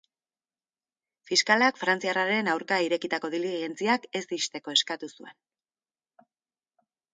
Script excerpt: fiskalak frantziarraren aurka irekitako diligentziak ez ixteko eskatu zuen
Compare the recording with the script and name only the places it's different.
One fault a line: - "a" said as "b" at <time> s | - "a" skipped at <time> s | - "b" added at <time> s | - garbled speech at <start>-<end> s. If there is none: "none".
none